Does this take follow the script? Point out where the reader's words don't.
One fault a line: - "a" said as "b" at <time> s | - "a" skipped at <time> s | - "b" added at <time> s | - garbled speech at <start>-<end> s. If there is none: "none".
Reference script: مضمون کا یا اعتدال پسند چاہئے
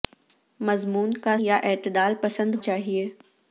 none